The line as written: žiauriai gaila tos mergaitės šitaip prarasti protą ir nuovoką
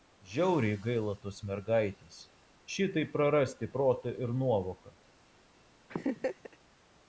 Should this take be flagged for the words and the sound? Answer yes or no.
yes